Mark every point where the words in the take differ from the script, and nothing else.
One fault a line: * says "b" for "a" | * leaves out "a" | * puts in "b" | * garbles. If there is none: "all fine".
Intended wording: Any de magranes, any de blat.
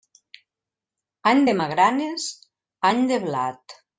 all fine